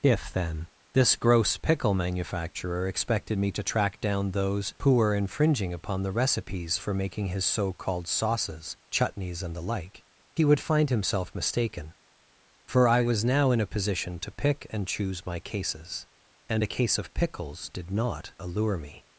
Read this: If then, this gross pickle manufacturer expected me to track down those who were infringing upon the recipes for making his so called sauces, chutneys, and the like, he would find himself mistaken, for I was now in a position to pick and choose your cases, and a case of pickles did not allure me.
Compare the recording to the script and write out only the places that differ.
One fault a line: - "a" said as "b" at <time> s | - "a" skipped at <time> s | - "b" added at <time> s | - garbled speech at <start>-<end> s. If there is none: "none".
- "your" said as "my" at 15.2 s